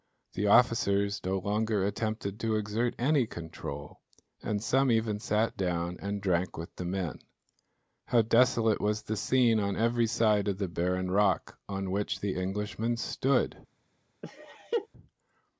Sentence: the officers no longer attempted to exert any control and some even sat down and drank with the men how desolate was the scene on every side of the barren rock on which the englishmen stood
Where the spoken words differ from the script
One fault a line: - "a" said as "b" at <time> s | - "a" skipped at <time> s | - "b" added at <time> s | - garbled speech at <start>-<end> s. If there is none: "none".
none